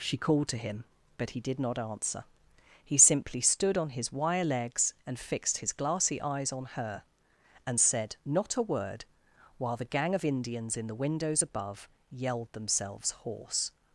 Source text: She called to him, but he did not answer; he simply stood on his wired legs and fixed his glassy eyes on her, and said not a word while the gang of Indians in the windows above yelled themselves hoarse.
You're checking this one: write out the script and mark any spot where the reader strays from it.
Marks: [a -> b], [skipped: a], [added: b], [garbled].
She called to him, but he did not answer; he simply stood on his [wired -> wire] legs and fixed his glassy eyes on her, and said not a word while the gang of Indians in the windows above yelled themselves hoarse.